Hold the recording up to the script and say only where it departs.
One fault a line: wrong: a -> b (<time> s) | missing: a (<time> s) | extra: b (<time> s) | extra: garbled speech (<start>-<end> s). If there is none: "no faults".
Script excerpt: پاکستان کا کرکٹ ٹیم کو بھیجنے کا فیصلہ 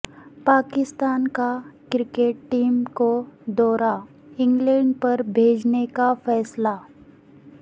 extra: دورہ انگلینڈ پر (3.5 s)